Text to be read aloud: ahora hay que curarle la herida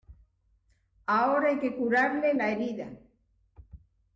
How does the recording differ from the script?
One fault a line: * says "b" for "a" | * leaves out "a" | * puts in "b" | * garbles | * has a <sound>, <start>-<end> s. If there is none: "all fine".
all fine